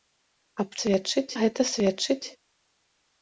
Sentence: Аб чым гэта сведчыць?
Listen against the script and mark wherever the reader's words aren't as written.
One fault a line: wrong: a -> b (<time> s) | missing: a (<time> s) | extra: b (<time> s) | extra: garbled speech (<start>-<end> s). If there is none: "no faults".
wrong: чым -> сведчыць (0.8 s)